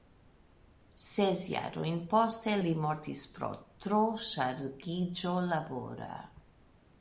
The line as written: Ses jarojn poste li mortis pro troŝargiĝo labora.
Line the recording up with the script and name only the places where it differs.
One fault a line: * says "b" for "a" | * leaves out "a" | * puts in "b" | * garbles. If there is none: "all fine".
all fine